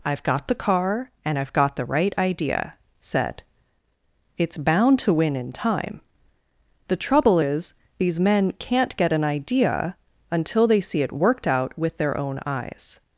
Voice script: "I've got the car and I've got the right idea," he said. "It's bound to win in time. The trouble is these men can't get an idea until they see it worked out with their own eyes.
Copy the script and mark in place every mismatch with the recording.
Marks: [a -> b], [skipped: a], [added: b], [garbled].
"I've got the car and I've got the right idea," [skipped: he] said. "It's bound to win in time. The trouble is these men can't get an idea until they see it worked out with their own eyes.